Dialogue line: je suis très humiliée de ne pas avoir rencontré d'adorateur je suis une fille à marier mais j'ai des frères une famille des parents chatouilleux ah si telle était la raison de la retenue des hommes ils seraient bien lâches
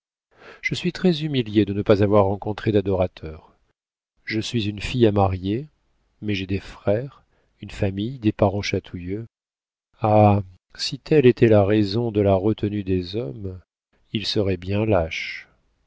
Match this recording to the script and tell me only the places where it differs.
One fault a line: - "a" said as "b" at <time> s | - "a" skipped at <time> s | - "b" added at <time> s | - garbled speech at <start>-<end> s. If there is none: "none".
none